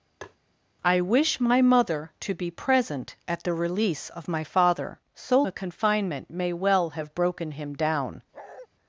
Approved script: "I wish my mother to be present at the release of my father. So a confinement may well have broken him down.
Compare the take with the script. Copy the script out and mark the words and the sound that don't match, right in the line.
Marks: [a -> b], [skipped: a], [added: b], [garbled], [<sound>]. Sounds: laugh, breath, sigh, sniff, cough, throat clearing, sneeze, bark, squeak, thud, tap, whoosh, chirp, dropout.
[tap] "I wish my mother to be present at the release of my father. So a confinement may well have broken him down. [bark]